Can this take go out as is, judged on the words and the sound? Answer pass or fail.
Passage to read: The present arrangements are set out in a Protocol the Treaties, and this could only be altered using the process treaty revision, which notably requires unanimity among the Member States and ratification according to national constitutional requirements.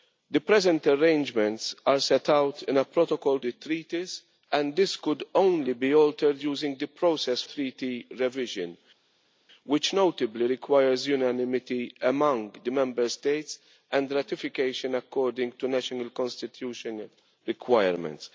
pass